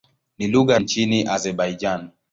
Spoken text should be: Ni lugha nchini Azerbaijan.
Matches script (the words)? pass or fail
pass